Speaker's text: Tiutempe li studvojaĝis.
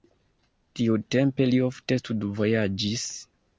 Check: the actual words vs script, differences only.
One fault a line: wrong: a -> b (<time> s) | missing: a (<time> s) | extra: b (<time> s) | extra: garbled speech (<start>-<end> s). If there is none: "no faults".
extra: ofte (1.7 s)